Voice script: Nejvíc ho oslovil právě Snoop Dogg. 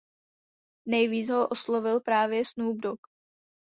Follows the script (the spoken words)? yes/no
yes